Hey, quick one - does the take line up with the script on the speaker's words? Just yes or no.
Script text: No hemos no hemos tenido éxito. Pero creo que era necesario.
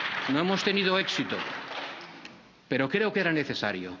no